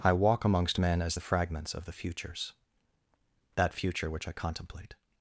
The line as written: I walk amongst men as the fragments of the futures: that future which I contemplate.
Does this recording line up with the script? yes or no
yes